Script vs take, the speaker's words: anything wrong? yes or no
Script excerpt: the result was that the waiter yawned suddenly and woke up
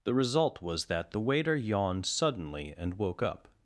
no